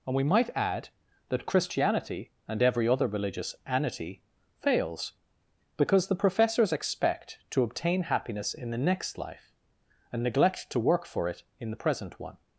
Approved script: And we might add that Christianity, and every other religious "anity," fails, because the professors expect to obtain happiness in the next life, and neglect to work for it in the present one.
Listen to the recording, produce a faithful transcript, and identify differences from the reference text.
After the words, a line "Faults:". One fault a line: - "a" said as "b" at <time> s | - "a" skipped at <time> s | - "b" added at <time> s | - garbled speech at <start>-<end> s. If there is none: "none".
And we might add that Christianity, and every other religious "anity," fails, because the professors expect to obtain happiness in the next life, and neglect to work for it in the present one.
Faults:
none